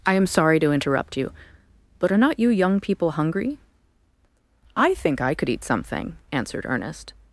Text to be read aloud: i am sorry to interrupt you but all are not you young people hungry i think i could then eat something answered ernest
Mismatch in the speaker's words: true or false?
true